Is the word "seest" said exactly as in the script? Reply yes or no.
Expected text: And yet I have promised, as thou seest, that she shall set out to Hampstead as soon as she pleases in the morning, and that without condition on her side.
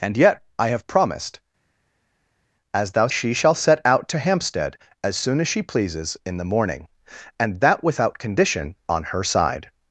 no